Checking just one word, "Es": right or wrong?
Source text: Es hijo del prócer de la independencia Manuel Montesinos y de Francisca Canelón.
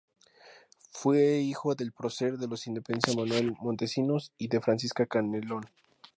wrong